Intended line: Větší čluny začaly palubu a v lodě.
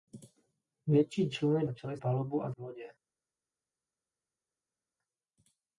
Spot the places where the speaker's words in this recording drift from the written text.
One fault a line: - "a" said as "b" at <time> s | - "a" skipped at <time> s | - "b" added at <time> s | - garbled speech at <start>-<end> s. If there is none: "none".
none